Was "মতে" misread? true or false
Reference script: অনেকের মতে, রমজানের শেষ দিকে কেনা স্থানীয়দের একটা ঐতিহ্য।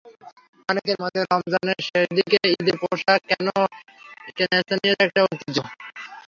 false